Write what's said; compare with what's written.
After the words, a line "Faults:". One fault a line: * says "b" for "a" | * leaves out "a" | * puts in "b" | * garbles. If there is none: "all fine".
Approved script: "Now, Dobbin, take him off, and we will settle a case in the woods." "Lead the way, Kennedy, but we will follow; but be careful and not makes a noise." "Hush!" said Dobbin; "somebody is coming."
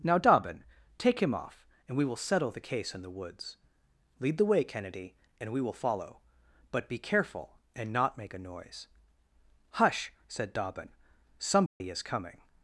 "Now, Dobbin, take him off, and we will settle the case in the woods." "Lead the way, Kennedy, and we will follow; but be careful and not make a noise." "Hush!" said Dobbin; "somebody is coming."
Faults:
* says "the" for "a"
* says "and" for "but"
* says "make" for "makes"